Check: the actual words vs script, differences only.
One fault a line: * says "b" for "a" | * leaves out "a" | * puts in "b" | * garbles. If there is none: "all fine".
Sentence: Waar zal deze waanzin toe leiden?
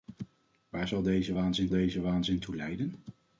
* puts in "deze waanzin"